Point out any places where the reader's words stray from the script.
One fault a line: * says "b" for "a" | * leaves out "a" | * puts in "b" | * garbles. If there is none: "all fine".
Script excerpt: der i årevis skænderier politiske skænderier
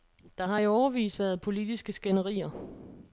* puts in "har"
* says "været" for "skænderier"